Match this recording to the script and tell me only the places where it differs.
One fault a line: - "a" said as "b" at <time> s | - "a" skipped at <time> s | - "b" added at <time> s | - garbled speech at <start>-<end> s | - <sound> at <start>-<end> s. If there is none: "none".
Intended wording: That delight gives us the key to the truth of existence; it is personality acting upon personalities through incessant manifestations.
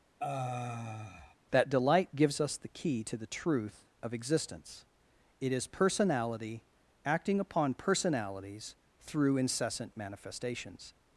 - sigh at 0.2-1.4 s